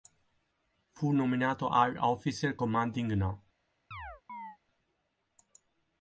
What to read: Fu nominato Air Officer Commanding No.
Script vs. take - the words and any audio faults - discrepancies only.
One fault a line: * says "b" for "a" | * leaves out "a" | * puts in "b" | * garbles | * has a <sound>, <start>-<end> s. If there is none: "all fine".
* has a chirp, 3.9-4.6 s